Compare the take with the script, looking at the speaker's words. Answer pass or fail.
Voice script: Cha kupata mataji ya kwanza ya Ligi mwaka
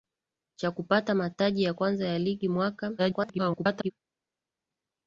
fail